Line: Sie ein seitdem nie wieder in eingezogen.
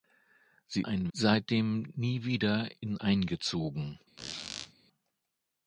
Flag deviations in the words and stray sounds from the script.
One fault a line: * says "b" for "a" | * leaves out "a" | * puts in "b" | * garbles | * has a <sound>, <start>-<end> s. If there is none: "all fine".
* has a squeak, 4.2-4.7 s